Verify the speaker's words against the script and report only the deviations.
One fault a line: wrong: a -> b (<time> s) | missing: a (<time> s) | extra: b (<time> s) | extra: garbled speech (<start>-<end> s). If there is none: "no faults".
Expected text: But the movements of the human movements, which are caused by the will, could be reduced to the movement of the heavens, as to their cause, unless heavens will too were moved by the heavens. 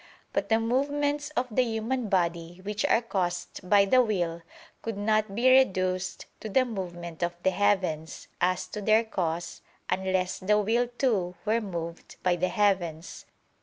wrong: movements -> body (2.1 s)
extra: not (5.0 s)
wrong: heavens -> the (10.4 s)